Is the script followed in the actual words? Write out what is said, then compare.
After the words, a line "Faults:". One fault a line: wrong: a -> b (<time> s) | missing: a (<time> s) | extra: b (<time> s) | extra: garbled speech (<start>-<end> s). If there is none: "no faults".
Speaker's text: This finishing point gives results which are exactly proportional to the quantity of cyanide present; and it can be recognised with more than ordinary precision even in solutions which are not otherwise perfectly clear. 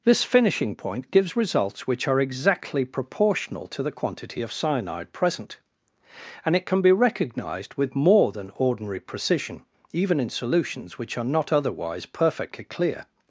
This finishing point gives results which are exactly proportional to the quantity of cyanide present; and it can be recognised with more than ordinary precision even in solutions which are not otherwise perfectly clear.
Faults:
no faults